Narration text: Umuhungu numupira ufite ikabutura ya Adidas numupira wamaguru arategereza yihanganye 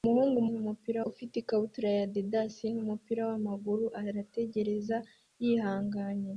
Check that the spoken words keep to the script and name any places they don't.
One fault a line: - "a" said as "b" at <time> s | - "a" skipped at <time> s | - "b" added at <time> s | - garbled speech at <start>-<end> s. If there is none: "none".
none